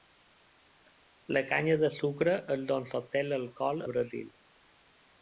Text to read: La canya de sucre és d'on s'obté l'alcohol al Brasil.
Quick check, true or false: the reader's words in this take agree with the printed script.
false